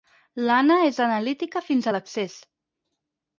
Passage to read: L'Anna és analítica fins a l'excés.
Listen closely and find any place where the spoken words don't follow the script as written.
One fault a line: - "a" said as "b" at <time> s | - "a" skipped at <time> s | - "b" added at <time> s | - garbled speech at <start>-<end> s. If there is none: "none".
none